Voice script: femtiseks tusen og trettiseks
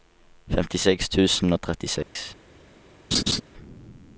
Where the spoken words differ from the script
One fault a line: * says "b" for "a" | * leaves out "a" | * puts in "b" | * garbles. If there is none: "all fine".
all fine